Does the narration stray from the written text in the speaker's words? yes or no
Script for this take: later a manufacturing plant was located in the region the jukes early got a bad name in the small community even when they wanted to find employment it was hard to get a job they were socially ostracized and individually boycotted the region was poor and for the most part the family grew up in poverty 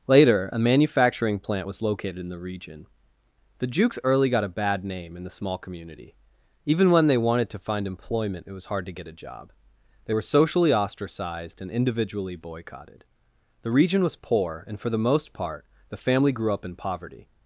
no